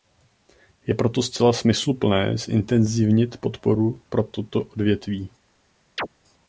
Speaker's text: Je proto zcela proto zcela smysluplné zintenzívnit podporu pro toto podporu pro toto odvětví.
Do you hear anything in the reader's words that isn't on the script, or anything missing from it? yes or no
yes